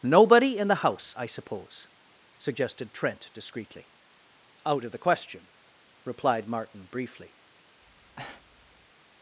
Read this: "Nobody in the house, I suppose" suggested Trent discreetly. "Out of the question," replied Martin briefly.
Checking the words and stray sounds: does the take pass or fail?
fail